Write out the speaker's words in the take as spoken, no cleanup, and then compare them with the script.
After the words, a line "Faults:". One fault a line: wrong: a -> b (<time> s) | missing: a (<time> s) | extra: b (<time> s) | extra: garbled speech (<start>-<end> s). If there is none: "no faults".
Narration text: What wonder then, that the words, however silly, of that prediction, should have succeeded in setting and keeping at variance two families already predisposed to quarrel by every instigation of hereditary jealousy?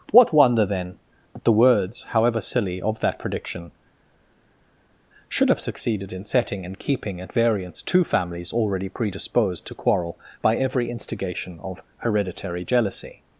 What wonder then, that the words, however silly, of that prediction, should have succeeded in setting and keeping at variance two families already predisposed to quarrel by every instigation of hereditary jealousy?
Faults:
no faults